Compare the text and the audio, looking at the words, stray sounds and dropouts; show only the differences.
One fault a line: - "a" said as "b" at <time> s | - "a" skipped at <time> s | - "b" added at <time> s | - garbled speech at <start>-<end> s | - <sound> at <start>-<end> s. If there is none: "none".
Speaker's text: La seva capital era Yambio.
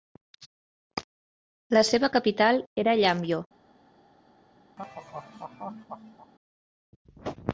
- laugh at 4.8-6.3 s